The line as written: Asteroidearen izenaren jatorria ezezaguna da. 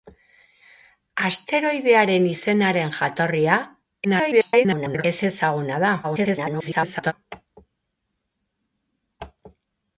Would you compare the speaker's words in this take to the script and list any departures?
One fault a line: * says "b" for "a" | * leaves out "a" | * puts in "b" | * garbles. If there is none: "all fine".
* garbles
* garbles